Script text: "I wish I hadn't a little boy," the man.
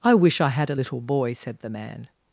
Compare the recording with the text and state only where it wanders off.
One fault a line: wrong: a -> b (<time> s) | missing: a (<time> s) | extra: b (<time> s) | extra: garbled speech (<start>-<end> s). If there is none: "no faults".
wrong: hadn't -> had (0.5 s)
extra: said (1.3 s)